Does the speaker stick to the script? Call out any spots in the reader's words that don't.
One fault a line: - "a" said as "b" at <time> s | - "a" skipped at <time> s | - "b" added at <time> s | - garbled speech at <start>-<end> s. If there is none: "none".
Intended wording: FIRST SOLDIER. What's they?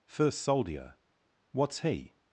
- "they" said as "he" at 1.8 s